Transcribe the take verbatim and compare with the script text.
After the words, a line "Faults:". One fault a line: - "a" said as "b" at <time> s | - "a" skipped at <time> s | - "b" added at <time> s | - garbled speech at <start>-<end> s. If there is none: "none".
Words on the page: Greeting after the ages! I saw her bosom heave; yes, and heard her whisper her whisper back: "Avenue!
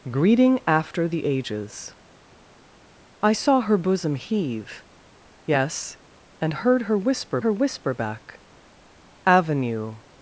Greeting after the ages! I saw her bosom heave; yes, and heard her whisper her whisper back: "Avenue!
Faults:
none